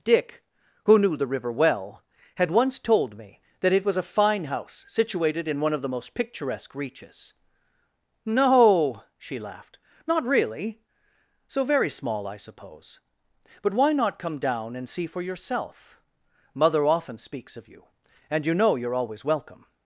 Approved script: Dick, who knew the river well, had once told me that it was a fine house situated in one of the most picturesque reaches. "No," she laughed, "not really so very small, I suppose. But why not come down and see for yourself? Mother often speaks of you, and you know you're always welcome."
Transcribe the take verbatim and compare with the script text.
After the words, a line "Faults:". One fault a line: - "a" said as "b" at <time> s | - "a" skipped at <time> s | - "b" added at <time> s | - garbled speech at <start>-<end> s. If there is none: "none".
Dick, who knew the river well, had once told me that it was a fine house situated in one of the most picturesque reaches. "No," she laughed, "not really so very small, I suppose. But why not come down and see for yourself? Mother often speaks of you, and you know you're always welcome."
Faults:
none